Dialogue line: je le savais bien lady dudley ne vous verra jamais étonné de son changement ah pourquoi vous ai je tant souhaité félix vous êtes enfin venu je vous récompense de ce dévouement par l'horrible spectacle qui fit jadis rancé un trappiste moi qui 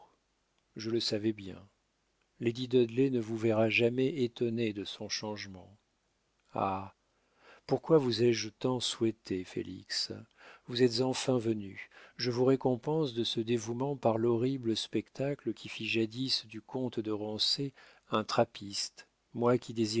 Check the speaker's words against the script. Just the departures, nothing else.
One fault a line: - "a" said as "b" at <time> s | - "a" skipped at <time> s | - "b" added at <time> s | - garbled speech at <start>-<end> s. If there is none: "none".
- "du comte de" added at 16.4 s